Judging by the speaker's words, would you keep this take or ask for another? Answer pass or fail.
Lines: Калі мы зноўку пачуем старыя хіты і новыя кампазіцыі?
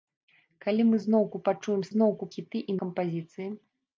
fail